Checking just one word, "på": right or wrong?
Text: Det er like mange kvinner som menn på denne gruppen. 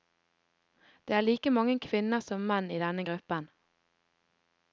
wrong